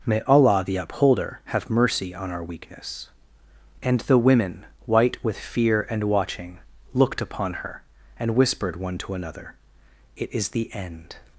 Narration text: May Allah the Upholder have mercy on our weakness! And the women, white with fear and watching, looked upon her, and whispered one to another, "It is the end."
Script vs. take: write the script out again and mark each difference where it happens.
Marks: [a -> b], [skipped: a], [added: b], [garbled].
May Allah the Upholder have mercy on our weakness! And the women, white with fear and watching, looked upon her, and whispered one to another, "It is the end."